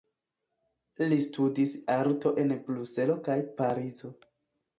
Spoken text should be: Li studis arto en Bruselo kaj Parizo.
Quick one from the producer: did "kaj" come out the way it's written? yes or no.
yes